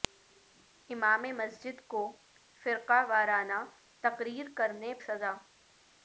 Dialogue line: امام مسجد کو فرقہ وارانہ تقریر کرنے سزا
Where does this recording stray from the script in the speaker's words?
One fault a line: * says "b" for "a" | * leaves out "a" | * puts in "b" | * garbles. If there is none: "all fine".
all fine